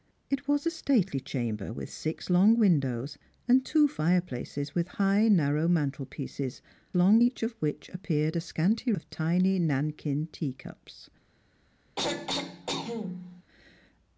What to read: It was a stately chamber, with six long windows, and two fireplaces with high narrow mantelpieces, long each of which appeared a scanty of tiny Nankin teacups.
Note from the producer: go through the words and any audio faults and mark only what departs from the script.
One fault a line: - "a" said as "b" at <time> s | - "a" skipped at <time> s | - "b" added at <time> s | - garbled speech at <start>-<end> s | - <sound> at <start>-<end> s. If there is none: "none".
- throat clearing at 12.0-13.4 s